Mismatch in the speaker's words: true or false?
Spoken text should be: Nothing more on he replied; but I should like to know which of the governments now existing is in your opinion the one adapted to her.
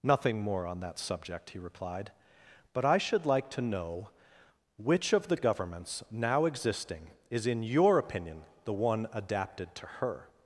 true